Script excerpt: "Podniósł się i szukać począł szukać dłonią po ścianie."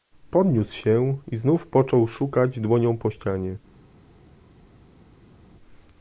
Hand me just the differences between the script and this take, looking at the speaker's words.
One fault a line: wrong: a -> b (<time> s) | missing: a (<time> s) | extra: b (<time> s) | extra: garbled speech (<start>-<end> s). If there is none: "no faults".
wrong: szukać -> znów (1.4 s)